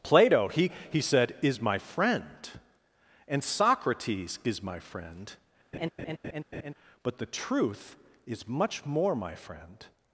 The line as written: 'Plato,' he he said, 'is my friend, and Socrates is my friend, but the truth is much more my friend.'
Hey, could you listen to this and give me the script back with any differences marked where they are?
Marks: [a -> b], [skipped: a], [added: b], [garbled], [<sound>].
'Plato,' he he said, 'is my friend, and Socrates is my friend, [laugh] but the truth is much more my friend.'